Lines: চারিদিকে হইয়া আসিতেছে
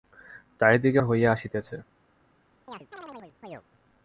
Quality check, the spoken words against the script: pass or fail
pass